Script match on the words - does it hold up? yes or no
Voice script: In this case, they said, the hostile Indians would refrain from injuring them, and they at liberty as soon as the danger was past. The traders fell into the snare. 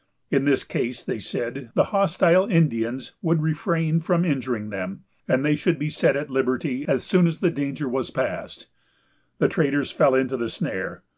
no